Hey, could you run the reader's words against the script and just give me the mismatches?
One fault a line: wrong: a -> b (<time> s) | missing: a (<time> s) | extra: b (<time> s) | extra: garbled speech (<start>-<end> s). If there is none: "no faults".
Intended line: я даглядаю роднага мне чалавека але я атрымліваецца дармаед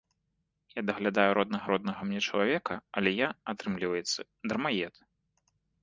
extra: роднага (1.7 s)